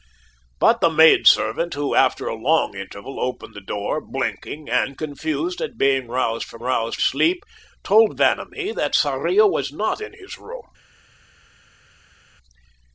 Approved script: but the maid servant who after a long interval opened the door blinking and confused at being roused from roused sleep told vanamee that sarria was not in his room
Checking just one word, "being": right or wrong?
right